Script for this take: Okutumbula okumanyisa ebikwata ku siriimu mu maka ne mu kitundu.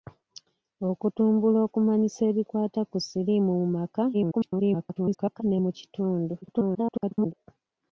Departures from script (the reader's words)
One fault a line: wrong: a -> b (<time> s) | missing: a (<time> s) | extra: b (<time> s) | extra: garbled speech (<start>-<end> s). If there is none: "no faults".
extra: garbled speech (4.1-5.4 s)
extra: garbled speech (6.4-7.3 s)